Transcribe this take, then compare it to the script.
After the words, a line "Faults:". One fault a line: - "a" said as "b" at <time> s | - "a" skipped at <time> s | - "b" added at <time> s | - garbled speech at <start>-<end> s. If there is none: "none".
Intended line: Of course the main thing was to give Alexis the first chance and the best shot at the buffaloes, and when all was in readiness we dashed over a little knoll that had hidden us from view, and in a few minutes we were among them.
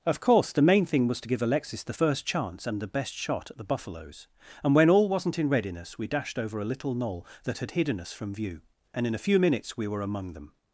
Of course the main thing was to give Alexis the first chance and the best shot at the buffaloes, and when all wasn't in readiness we dashed over a little knoll that had hidden us from view, and in a few minutes we were among them.
Faults:
- "was" said as "wasn't" at 5.1 s